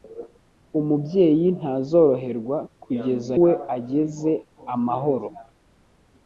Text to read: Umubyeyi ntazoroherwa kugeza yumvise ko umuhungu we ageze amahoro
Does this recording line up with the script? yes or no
no